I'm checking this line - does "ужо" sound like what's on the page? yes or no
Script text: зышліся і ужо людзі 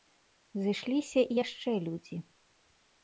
no